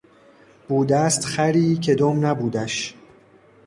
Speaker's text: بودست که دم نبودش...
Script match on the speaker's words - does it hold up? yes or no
no